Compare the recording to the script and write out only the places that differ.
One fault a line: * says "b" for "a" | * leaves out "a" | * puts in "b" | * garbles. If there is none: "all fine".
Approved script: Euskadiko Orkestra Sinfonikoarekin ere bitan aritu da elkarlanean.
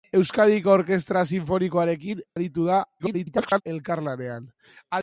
* leaves out "ere bitan"
* garbles